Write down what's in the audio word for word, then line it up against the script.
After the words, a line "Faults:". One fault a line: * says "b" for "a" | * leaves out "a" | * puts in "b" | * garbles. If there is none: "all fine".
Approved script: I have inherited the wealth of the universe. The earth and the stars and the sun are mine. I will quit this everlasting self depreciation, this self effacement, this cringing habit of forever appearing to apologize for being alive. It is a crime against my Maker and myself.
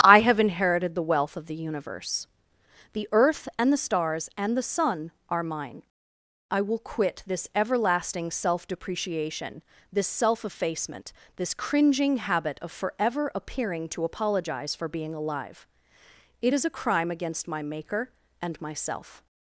I have inherited the wealth of the universe. The earth and the stars and the sun are mine. I will quit this everlasting self depreciation, this self effacement, this cringing habit of forever appearing to apologize for being alive. It is a crime against my Maker and myself.
Faults:
all fine